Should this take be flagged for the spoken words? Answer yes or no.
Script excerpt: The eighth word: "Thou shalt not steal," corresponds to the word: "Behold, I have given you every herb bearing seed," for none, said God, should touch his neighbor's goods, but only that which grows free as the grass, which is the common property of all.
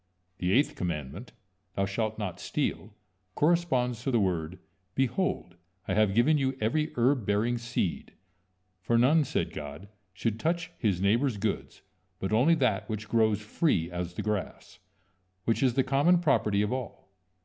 yes